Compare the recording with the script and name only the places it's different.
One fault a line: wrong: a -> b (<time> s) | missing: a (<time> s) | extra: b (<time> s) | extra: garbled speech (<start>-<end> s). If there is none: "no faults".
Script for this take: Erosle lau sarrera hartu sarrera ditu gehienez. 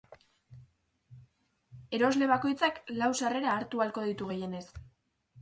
extra: bakoitzak (2.3 s)
wrong: sarrera -> ahalko (3.9 s)